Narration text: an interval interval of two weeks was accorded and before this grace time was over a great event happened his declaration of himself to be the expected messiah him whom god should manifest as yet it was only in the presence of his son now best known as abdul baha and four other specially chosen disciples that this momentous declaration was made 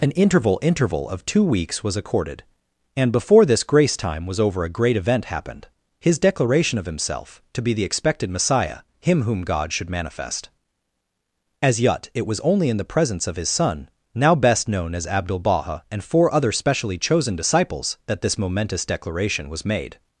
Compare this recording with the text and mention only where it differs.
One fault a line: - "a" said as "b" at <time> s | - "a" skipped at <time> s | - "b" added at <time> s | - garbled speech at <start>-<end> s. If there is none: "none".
none